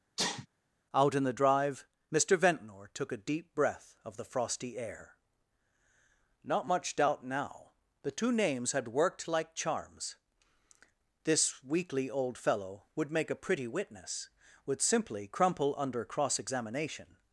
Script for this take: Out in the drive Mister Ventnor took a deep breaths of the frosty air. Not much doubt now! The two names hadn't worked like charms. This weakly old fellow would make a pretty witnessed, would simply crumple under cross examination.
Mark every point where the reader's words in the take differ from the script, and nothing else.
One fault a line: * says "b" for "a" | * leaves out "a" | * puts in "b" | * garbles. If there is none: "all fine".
* says "breath" for "breaths"
* says "had" for "hadn't"
* says "witness" for "witnessed"